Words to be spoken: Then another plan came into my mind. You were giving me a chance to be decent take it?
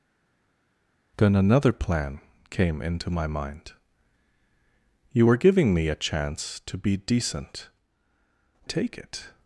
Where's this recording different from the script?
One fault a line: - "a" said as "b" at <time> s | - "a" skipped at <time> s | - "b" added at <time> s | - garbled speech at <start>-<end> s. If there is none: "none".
none